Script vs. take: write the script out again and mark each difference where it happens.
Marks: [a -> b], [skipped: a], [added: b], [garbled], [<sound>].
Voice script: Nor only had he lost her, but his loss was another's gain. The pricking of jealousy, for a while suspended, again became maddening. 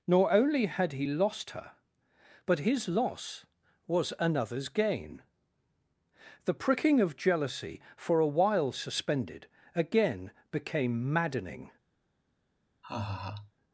Nor only had he lost her, but his loss was another's gain. The pricking of jealousy, for a while suspended, again became maddening. [laugh]